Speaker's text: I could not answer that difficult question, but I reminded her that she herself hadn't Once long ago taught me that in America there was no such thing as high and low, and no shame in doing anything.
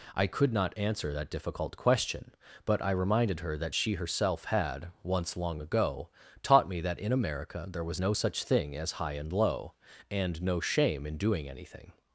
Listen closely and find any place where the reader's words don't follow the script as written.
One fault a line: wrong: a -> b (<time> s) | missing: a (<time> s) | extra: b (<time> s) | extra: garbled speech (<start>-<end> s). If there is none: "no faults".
wrong: hadn't -> had (4.5 s)